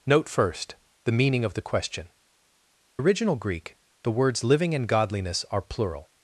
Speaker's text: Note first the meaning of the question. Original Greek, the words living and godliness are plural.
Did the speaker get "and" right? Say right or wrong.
right